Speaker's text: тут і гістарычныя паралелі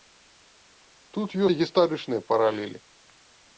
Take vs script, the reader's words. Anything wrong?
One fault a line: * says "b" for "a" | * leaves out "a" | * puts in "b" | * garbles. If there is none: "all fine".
all fine